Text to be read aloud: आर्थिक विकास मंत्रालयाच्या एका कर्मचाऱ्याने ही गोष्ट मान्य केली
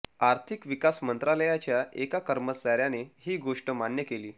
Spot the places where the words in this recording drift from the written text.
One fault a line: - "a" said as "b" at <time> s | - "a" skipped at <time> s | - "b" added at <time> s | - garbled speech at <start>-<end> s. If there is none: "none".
none